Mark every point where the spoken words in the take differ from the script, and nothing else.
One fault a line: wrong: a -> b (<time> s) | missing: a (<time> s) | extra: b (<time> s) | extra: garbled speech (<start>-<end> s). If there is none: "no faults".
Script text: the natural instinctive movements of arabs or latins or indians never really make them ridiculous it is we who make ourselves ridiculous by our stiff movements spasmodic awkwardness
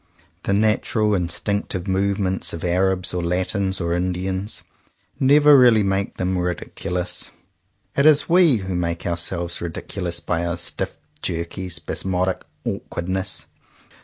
wrong: movements -> jerky (11.2 s)